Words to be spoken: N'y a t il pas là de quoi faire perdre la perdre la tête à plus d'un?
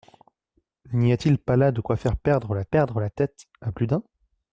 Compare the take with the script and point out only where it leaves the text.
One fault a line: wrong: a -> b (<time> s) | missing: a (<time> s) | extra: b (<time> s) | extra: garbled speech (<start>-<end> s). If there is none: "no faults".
no faults